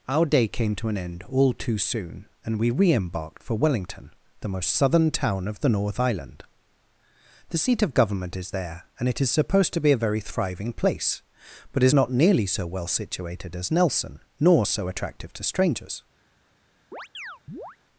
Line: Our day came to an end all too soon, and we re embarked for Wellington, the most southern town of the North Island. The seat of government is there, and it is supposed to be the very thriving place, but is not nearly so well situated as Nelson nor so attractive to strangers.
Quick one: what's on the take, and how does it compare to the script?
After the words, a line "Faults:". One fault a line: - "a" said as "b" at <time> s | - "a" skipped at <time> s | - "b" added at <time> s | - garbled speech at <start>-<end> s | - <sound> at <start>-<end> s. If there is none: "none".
Our day came to an end all too soon, and we re embarked for Wellington, the most southern town of the North Island. The seat of government is there, and it is supposed to be a very thriving place, but is not nearly so well situated as Nelson nor so attractive to strangers.
Faults:
- "the" said as "a" at 9.9 s
- chirp at 16.9-17.8 s